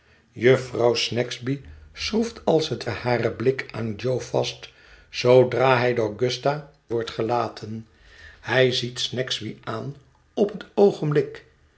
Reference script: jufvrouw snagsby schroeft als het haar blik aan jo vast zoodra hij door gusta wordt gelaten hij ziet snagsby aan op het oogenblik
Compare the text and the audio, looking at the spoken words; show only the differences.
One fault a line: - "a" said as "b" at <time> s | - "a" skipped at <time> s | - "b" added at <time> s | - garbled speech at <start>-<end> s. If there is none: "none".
none